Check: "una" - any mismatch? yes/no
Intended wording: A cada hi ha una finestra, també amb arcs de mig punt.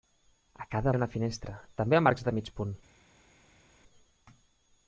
no